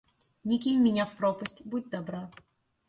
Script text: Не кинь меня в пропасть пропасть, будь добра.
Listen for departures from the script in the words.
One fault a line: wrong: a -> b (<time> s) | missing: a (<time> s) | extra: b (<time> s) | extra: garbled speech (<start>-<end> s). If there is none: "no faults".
missing: пропасть (1.6 s)